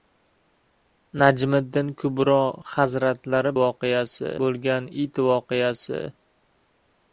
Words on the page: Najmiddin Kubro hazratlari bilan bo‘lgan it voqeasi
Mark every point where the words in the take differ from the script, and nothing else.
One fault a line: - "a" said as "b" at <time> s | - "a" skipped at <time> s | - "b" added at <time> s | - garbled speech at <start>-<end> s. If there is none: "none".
- "bilan" said as "voqeasi" at 3.6 s